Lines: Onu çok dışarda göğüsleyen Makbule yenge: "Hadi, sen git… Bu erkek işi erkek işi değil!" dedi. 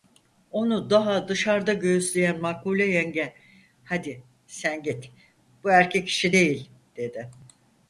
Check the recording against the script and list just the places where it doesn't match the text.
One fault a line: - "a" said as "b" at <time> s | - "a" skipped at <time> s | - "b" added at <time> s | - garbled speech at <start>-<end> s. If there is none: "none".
- "çok" said as "daha" at 0.9 s
- "erkek işi" skipped at 6.3 s